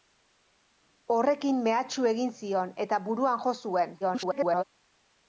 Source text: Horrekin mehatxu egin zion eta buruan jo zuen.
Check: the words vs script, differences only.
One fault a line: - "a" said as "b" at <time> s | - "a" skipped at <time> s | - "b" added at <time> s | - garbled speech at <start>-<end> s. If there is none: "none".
- garbled speech at 4.0-4.6 s